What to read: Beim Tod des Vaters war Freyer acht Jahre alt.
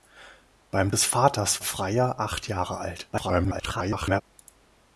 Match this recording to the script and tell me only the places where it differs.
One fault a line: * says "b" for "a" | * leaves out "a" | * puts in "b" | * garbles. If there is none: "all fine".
* leaves out "Tod"
* leaves out "war"
* garbles